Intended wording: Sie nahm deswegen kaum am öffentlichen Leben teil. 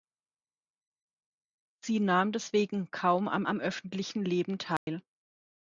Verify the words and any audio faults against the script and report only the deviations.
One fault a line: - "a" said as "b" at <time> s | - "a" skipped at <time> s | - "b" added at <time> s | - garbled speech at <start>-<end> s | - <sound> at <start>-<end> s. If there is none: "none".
- "am" added at 3.4 s
- dropout at 4.8-4.9 s